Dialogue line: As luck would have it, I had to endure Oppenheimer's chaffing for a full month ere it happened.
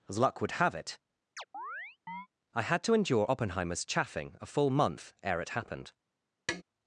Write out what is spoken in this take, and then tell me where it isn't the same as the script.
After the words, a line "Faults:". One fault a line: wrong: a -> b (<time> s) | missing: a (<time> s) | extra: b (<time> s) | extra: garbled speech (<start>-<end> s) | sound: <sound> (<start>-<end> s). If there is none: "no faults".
As luck would have it, I had to endure Oppenheimer's chaffing a full month ere it happened.
Faults:
sound: chirp (1.4-2.3 s)
missing: for (4.4 s)
sound: tap (6.5-6.6 s)